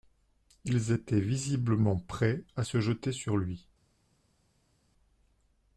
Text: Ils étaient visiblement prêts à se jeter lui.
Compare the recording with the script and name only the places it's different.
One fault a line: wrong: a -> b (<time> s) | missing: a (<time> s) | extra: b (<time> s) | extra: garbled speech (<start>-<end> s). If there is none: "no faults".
extra: sur (3.1 s)